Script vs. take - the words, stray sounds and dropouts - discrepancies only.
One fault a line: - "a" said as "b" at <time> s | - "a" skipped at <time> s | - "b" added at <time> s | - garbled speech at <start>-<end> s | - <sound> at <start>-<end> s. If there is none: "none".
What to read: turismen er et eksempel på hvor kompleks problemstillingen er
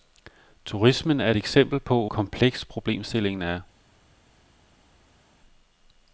- "hvor" skipped at 2.1 s